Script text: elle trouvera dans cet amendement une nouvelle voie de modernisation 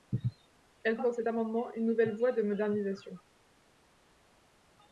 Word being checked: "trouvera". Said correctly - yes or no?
no